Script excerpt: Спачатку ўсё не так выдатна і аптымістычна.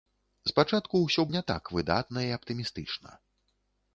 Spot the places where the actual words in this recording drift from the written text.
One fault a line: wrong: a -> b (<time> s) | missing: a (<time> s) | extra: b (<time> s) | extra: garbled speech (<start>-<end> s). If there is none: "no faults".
no faults